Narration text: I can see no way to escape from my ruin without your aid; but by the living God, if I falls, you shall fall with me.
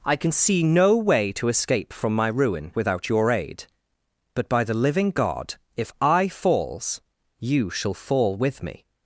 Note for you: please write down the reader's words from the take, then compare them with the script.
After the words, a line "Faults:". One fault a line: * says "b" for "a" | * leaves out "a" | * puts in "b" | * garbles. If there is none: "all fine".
I can see no way to escape from my ruin without your aid; but by the living God, if I falls, you shall fall with me.
Faults:
all fine